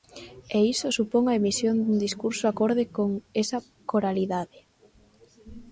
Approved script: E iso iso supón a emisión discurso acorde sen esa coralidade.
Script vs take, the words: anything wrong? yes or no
yes